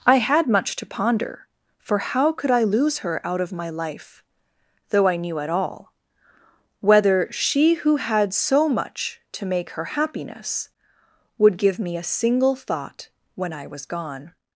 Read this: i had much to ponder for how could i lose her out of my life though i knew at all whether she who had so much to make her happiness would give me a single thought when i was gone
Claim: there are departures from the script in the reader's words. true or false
false